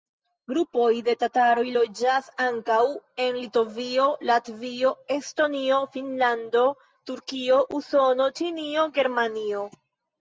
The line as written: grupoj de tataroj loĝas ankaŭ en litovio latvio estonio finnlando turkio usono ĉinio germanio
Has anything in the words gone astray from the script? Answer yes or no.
no